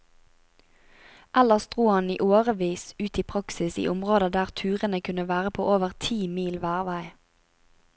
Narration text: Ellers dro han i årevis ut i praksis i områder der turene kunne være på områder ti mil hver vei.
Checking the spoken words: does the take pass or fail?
fail